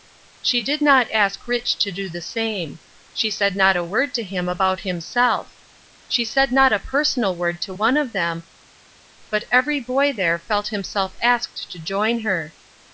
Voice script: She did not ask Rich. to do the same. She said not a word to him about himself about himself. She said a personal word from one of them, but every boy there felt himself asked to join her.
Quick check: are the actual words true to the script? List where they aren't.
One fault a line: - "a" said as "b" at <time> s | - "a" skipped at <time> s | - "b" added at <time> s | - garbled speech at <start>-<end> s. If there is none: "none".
- "about himself" skipped at 5.5 s
- "not" added at 6.5 s
- "from" said as "to" at 7.6 s